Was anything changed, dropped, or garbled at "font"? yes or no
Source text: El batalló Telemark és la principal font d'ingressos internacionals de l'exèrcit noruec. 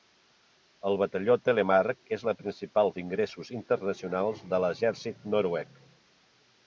yes